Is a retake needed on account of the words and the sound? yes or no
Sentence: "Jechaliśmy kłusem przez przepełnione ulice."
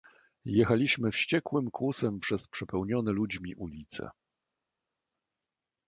yes